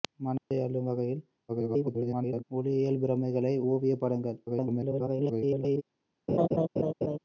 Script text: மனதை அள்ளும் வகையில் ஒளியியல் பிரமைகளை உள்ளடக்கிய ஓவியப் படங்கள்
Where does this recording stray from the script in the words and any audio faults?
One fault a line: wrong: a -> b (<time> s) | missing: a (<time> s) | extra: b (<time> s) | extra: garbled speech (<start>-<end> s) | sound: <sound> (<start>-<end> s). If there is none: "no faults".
sound: dropout (0.4-0.5 s)
extra: garbled speech (1.5-2.4 s)
missing: உள்ளடக்கிய (3.5 s)
extra: garbled speech (4.5-5.8 s)
sound: laugh (6.3-7.2 s)